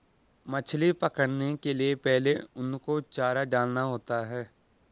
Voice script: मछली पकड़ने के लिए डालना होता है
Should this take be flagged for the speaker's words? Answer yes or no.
yes